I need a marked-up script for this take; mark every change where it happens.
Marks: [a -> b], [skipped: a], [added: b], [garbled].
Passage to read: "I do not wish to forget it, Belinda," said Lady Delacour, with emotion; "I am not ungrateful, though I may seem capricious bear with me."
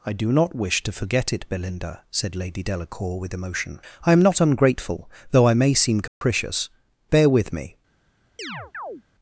"I do not wish to forget it, Belinda," said Lady Delacour, with emotion; "I am not ungrateful, though I may seem capricious bear with me."